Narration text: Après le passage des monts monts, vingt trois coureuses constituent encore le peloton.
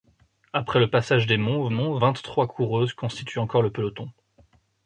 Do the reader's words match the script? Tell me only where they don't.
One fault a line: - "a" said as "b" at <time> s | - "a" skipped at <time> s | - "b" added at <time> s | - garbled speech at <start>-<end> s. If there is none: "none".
none